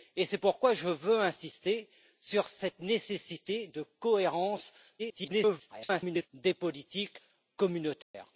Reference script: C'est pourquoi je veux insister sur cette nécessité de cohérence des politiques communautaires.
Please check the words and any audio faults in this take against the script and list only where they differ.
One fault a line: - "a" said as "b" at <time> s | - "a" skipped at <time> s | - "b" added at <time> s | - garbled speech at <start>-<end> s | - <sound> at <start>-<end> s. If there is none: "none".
- garbled speech at 5.0-6.3 s
- dropout at 8.0-8.1 s